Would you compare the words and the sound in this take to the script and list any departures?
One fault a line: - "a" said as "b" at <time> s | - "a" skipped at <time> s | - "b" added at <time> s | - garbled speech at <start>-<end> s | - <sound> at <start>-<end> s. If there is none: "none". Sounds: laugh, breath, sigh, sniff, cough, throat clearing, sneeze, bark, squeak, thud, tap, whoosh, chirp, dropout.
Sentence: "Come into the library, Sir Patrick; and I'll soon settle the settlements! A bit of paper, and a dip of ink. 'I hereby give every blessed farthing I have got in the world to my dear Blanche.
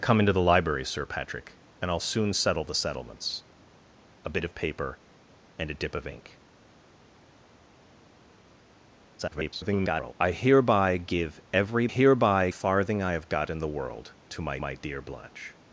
- garbled speech at 9.2-10.1 s
- "blessed" said as "hereby" at 11.9 s
- "my" added at 14.6 s